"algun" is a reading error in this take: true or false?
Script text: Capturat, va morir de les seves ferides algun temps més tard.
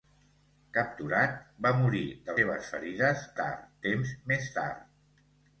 true